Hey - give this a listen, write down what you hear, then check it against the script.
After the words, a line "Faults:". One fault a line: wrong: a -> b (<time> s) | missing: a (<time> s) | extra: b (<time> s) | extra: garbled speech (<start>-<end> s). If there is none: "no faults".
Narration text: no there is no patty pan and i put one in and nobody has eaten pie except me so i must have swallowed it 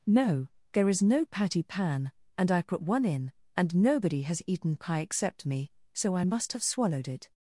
no there is no patty pan and i put one in and nobody has eaten pie except me so i must have swallowed it
Faults:
no faults